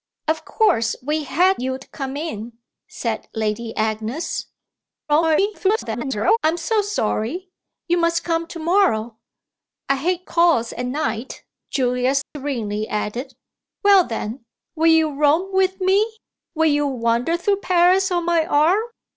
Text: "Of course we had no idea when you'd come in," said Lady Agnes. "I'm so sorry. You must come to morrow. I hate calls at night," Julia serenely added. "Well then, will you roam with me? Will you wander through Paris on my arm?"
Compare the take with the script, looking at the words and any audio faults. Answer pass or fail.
fail